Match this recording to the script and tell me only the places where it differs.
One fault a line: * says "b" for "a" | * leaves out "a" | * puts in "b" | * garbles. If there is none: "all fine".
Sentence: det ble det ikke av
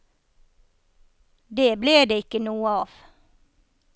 * puts in "noe"